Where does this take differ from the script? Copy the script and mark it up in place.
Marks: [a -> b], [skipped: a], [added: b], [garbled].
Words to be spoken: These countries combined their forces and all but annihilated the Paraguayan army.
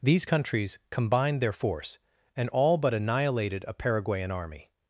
These countries combined their [forces -> force] and all but annihilated [the -> a] Paraguayan army.